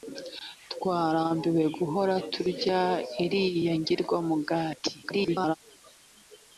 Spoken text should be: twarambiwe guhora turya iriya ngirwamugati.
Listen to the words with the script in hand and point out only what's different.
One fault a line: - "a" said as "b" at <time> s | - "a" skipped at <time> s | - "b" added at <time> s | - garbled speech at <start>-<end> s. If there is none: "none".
- garbled speech at 5.0-5.6 s